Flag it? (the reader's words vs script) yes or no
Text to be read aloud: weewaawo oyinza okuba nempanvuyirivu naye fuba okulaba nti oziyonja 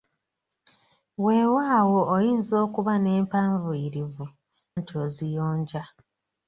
yes